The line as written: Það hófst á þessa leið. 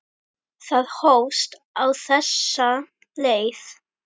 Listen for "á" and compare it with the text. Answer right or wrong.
right